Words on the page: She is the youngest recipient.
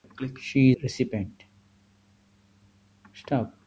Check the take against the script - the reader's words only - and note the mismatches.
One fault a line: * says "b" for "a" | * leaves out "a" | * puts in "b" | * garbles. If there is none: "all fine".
* leaves out "is the youngest"